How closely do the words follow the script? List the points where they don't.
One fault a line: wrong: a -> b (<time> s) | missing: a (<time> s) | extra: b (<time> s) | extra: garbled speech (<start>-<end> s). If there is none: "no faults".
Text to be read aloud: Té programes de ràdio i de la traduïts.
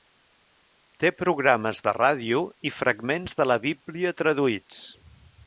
extra: fragments (2.8 s)
extra: bíblia (3.7 s)